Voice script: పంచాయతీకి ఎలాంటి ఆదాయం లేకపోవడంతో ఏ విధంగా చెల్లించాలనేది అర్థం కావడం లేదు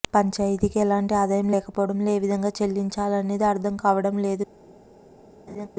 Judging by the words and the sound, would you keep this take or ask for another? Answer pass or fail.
fail